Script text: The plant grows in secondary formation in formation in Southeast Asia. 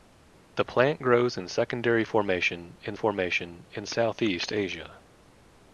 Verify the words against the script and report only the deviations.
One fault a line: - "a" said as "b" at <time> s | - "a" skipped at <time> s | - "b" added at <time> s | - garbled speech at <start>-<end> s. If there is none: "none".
none